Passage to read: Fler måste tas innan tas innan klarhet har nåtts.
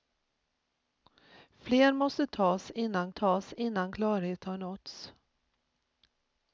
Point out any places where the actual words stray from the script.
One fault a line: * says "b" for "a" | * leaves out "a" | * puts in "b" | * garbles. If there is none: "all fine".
all fine